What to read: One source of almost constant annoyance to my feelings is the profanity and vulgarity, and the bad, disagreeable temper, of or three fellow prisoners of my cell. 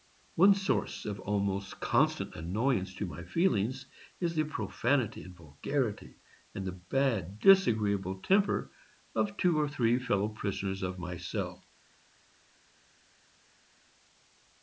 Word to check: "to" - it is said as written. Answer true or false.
true